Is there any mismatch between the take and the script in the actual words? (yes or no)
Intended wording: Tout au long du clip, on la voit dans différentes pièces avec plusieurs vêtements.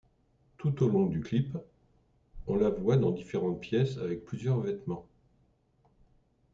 no